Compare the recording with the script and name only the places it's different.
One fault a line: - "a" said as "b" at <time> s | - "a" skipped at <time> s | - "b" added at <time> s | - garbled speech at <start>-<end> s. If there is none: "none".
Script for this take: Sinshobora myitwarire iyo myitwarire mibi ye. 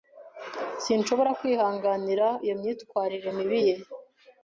- "myitwarire" said as "kwihanganira" at 1.4 s